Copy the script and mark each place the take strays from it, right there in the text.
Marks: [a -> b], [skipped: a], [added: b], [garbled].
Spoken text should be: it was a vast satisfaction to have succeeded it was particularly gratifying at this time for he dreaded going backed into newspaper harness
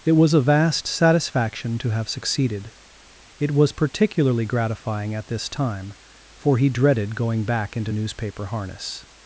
it was a vast satisfaction to have succeeded it was particularly gratifying at this time for he dreaded going [backed -> back] into newspaper harness